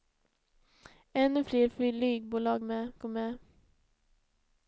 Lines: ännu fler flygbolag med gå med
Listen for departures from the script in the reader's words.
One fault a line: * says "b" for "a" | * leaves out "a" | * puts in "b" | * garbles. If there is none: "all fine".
all fine